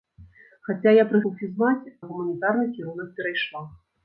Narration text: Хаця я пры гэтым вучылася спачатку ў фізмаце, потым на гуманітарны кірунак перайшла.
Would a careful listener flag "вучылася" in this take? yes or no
yes